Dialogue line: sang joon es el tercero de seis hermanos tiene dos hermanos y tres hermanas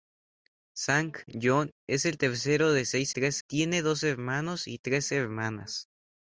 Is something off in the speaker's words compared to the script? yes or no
yes